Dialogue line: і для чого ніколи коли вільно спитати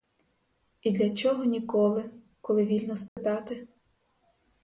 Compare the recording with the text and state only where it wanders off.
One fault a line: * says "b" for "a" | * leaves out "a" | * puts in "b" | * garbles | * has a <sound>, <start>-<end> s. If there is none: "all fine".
* has a dropout, 3.1-3.2 s